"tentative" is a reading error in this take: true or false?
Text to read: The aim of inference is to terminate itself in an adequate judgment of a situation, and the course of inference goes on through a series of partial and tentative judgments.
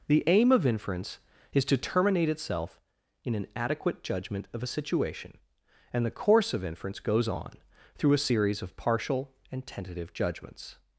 false